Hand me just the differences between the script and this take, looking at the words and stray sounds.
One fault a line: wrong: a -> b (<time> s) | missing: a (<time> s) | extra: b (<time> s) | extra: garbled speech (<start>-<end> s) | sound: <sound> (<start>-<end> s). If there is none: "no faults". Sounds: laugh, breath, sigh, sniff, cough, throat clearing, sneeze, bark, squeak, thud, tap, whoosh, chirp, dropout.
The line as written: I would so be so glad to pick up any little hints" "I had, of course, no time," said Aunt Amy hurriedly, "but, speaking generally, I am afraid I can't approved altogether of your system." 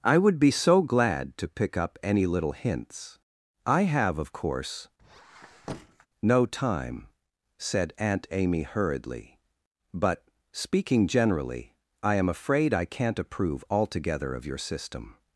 missing: so (0.4 s)
wrong: had -> have (3.8 s)
sound: squeak (5.0-6.1 s)
wrong: approved -> approve (13.2 s)